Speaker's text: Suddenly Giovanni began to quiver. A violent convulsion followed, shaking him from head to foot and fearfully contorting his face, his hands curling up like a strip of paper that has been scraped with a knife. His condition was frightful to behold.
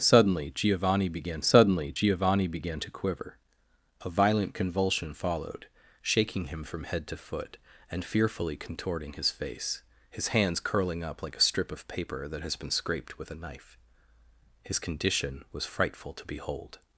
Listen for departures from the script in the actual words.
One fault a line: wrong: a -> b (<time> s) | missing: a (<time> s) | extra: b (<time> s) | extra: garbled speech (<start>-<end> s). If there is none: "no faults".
extra: suddenly Giovanni began (1.4 s)